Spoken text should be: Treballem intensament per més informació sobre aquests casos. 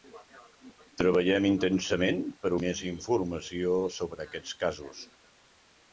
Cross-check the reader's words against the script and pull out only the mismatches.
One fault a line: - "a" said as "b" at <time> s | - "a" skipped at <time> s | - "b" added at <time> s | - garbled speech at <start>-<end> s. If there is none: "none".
none